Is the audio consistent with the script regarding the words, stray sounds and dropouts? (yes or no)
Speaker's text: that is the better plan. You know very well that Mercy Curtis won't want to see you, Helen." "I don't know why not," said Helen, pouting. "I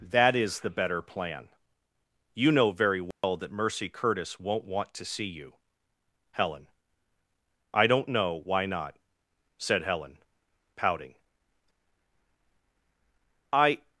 no